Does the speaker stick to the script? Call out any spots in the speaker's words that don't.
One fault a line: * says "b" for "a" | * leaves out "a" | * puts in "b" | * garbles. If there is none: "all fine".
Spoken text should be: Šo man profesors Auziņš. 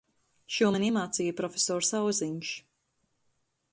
* puts in "iemācīja"